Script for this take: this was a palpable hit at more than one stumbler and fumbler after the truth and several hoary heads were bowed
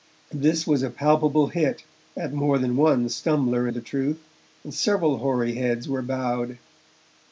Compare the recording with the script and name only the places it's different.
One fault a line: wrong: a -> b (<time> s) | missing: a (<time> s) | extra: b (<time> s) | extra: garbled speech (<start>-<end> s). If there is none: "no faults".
missing: and fumbler after (3.7 s)